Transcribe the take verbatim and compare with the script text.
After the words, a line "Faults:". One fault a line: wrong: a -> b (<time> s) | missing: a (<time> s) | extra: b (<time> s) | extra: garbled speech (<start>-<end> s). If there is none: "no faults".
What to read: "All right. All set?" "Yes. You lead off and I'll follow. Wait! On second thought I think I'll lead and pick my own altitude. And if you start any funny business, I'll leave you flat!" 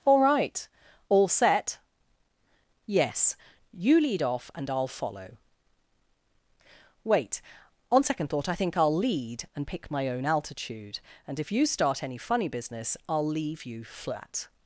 "All right. All set?" "Yes. You lead off and I'll follow. Wait! On second thought I think I'll lead and pick my own altitude. And if you start any funny business, I'll leave you flat!"
Faults:
no faults